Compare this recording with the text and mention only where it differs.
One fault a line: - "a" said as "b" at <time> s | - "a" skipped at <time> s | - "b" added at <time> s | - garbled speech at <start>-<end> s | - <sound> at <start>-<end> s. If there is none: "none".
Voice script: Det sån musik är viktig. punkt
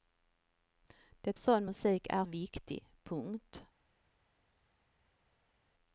none